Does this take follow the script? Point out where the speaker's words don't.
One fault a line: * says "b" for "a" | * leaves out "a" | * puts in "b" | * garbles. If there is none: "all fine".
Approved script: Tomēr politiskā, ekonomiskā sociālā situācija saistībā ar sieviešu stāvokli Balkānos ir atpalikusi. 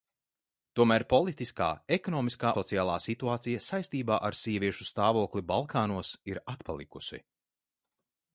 all fine